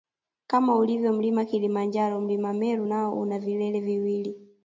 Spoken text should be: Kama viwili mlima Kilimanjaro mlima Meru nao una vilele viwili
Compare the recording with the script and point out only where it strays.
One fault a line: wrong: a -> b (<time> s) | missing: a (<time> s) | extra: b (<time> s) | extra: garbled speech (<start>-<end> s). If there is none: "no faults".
wrong: viwili -> ulivyo (0.8 s)